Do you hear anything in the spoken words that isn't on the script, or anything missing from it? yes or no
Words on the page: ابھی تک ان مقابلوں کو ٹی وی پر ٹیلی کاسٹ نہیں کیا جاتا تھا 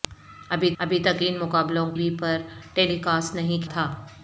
yes